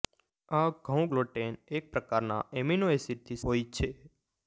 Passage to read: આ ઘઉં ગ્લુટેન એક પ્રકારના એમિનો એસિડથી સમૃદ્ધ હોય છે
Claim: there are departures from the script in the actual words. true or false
true